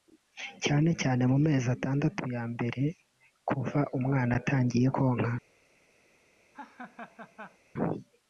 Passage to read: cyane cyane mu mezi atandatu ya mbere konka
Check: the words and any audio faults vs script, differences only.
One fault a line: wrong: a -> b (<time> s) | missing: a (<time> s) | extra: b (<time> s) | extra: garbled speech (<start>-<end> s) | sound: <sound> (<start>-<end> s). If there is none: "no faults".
extra: kuva umwana atangiye (3.5 s)
sound: laugh (6.5-7.6 s)